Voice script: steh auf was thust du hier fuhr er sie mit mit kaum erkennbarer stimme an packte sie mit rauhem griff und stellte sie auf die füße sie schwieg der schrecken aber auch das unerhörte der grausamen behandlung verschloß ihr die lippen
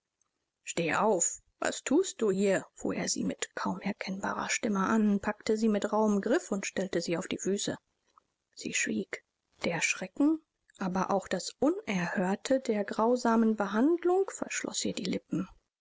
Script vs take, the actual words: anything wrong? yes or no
yes